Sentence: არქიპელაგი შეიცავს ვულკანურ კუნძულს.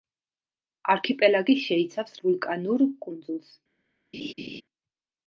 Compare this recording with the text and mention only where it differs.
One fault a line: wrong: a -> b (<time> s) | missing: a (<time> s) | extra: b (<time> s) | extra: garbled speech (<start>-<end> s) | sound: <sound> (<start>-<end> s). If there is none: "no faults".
sound: laugh (4.1-4.6 s)